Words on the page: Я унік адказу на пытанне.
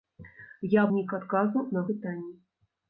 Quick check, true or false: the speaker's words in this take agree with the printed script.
true